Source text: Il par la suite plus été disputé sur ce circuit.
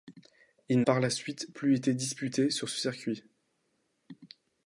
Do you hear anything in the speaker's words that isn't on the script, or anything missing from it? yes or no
no